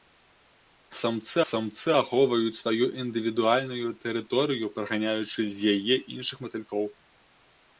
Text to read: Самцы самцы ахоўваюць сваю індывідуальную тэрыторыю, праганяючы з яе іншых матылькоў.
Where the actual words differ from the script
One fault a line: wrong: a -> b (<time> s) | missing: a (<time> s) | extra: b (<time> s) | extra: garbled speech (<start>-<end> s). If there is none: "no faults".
no faults